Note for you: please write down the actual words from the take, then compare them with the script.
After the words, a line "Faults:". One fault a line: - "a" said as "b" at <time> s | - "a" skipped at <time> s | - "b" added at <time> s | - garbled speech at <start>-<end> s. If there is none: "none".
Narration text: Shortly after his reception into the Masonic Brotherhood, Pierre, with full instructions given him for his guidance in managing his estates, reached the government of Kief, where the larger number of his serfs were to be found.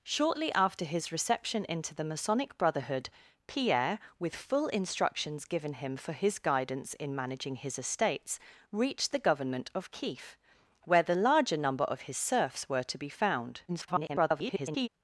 Shortly after his reception into the Masonic Brotherhood, Pierre, with full instructions given him for his guidance in managing his estates, reached the government of Kief, where the larger number of his serfs were to be found. [garbled]
Faults:
- garbled speech at 13.7-14.9 s